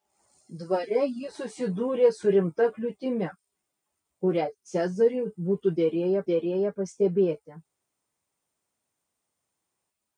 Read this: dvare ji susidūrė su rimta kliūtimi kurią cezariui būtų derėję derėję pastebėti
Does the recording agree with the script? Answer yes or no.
yes